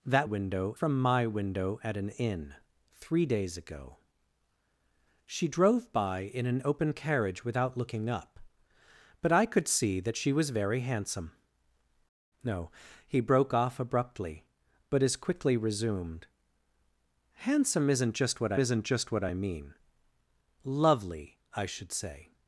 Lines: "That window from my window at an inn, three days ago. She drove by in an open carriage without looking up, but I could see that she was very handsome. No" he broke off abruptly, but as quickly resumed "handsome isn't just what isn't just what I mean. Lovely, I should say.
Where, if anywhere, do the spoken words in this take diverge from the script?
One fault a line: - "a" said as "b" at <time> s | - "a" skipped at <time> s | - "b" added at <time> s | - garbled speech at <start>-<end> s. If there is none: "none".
none